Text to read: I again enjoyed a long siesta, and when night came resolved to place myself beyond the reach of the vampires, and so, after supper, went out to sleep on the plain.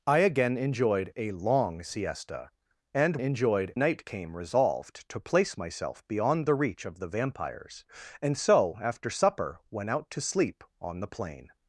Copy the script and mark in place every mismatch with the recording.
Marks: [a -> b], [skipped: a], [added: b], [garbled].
I again enjoyed a long siesta, and [when -> enjoyed] night came resolved to place myself beyond the reach of the vampires, and so, after supper, went out to sleep on the plain.